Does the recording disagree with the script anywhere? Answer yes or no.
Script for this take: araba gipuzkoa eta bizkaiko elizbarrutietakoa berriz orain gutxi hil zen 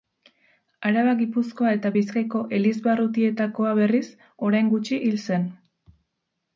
no